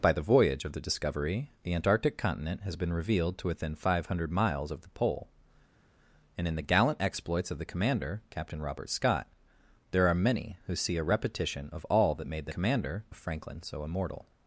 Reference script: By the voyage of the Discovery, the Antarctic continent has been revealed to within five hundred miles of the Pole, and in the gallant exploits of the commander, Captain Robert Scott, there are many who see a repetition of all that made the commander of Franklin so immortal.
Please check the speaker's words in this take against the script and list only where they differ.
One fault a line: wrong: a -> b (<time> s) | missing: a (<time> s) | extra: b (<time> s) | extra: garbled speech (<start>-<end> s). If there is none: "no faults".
no faults